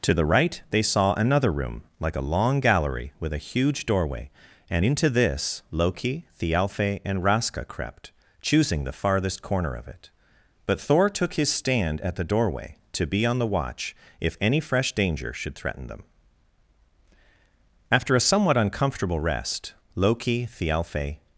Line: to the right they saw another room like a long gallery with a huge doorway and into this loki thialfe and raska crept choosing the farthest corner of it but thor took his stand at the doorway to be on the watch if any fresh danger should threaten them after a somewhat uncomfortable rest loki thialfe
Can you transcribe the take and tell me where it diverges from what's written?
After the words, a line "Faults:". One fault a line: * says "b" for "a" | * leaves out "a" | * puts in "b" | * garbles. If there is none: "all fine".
to the right they saw another room like a long gallery with a huge doorway and into this loki thialfe and raska crept choosing the farthest corner of it but thor took his stand at the doorway to be on the watch if any fresh danger should threaten them after a somewhat uncomfortable rest loki thialfe
Faults:
all fine